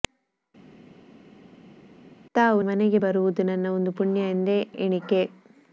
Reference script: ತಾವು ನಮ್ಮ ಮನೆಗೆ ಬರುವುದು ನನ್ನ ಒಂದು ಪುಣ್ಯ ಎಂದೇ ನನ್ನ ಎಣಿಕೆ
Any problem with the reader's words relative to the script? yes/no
yes